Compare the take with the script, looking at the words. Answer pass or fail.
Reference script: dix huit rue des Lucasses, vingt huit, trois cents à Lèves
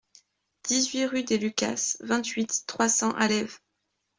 pass